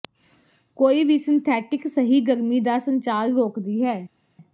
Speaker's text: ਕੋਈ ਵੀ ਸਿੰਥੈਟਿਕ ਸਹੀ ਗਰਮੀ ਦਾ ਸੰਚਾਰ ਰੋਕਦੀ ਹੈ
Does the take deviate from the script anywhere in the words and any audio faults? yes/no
no